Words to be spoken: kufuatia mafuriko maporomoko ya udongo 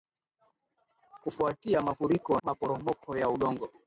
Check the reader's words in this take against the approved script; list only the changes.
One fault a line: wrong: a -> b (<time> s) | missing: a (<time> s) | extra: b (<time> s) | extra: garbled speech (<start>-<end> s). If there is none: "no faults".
no faults